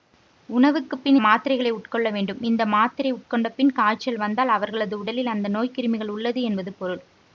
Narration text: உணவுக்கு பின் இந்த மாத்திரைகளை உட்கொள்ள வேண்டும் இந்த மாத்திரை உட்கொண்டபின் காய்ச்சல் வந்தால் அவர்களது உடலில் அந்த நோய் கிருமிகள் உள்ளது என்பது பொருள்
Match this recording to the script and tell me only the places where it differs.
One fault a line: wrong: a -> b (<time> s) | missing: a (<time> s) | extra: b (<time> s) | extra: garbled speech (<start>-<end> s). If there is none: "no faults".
missing: இந்த (1.2 s)